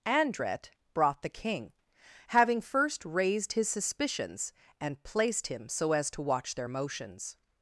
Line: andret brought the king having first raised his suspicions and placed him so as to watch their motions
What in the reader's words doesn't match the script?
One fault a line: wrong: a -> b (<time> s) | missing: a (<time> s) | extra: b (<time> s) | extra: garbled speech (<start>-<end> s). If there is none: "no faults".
no faults